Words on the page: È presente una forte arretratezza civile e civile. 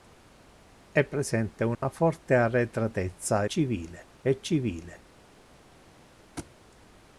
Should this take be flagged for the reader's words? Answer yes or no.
no